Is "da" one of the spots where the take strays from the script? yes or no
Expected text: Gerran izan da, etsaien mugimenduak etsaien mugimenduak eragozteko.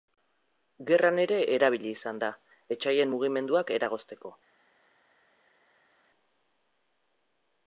no